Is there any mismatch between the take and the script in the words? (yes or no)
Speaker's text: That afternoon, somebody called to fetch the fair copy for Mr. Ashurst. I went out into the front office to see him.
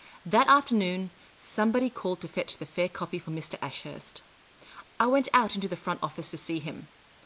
no